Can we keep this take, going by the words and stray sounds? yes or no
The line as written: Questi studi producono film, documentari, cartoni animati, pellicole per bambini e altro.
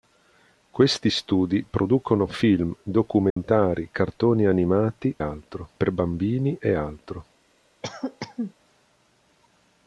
no